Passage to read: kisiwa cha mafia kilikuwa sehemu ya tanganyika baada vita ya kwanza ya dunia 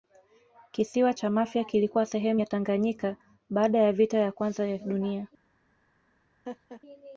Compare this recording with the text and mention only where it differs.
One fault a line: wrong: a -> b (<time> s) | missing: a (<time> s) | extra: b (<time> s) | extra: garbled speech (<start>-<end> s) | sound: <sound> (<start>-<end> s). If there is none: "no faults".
extra: ya (3.8 s)
sound: laugh (6.5-6.8 s)